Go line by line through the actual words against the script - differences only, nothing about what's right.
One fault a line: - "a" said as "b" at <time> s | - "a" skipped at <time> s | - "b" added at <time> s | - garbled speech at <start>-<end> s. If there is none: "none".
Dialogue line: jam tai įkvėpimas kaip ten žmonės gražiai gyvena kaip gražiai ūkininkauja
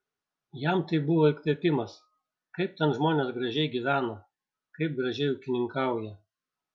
- "buvo" added at 1.1 s